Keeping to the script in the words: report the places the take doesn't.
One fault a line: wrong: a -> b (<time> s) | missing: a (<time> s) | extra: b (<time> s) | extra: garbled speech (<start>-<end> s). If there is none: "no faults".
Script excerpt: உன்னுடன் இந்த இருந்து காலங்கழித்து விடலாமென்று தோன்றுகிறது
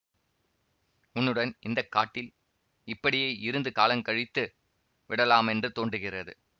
extra: காட்டில் இப்படியே (1.9 s)